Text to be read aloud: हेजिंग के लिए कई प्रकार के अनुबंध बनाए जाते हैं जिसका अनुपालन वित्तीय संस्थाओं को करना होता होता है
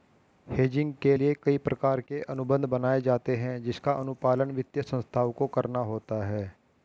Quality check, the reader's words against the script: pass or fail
fail